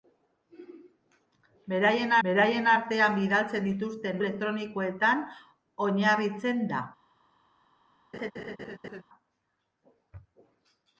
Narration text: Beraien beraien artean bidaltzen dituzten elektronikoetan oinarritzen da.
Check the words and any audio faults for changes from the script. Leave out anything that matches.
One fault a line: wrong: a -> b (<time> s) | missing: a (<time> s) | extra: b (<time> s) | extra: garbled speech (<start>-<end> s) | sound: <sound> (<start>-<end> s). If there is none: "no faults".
sound: laugh (8.1-9.0 s)